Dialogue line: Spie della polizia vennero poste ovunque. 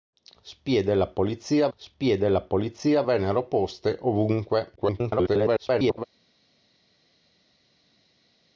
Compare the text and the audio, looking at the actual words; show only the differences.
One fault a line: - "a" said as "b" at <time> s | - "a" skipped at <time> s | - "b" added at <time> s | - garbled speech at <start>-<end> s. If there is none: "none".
- "spie della polizia" added at 1.8 s
- garbled speech at 4.8-6.0 s